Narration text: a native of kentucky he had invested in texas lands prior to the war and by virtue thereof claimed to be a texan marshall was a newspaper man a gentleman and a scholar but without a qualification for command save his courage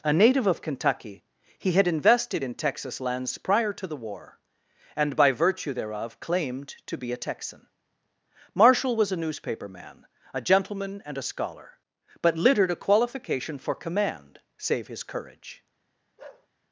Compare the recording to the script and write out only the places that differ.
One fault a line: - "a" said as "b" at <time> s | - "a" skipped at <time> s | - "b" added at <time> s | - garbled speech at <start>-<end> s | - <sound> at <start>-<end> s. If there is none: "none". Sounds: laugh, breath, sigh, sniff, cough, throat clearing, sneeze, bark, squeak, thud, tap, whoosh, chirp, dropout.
- "without" said as "littered" at 12.4 s
- bark at 16.2-16.5 s